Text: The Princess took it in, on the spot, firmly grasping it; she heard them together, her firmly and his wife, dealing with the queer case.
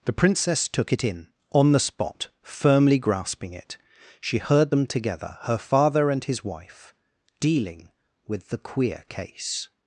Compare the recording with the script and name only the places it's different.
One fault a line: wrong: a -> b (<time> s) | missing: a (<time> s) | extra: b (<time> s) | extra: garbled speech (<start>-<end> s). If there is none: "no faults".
wrong: firmly -> father (5.6 s)